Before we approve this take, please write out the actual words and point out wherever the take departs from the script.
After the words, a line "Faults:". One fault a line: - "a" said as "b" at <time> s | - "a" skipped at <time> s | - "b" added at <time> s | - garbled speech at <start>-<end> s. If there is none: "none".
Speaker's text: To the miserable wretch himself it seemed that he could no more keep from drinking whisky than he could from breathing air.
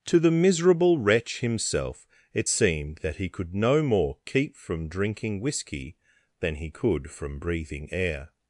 To the miserable wretch himself it seemed that he could no more keep from drinking whisky than he could from breathing air.
Faults:
none